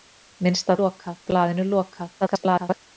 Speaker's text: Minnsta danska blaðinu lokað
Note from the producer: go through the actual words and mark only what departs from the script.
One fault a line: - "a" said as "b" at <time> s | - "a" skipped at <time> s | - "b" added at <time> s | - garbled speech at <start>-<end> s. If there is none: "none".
- "danska" said as "lokað" at 0.8 s
- garbled speech at 2.2-2.8 s